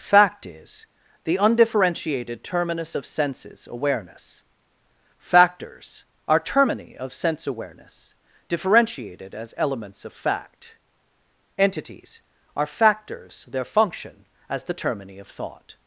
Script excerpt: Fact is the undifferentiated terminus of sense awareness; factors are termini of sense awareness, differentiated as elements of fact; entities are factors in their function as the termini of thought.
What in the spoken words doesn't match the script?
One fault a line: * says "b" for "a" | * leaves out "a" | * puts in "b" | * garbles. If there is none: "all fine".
* says "senses" for "sense"
* leaves out "in"